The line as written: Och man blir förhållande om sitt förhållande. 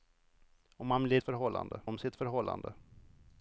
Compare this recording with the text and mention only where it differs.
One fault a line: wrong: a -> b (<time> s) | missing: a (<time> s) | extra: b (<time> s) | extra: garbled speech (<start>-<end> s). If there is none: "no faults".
no faults